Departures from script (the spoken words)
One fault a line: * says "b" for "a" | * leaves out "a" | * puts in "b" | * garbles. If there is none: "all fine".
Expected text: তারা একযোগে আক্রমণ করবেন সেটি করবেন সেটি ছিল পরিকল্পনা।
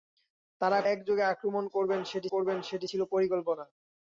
all fine